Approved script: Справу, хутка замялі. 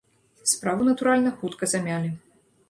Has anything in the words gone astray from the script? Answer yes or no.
yes